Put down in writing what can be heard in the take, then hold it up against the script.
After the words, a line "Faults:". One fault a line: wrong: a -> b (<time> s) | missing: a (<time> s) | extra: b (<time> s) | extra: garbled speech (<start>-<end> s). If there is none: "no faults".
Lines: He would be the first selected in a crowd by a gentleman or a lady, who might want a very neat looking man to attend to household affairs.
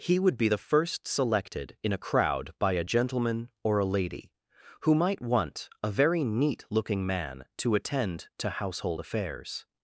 He would be the first selected in a crowd by a gentleman or a lady, who might want a very neat looking man to attend to household affairs.
Faults:
no faults